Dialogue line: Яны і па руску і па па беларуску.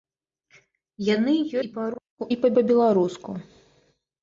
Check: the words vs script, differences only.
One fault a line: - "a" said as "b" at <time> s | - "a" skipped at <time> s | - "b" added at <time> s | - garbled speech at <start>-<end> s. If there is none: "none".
none